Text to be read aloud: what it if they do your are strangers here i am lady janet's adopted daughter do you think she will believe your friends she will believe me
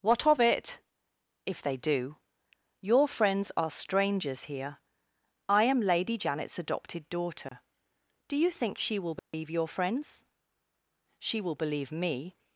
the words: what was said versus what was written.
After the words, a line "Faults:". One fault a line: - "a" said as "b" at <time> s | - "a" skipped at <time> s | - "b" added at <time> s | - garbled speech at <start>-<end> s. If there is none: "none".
what of it if they do your friends are strangers here i am lady janet's adopted daughter do you think she will believe your friends she will believe me
Faults:
- "of" added at 0.2 s
- "friends" added at 3.1 s